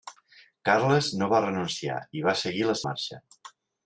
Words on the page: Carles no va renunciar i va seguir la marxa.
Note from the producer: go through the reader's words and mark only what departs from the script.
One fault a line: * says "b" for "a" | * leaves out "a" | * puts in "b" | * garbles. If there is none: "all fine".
all fine